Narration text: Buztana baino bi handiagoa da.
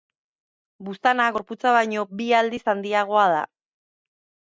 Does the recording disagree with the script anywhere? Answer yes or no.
yes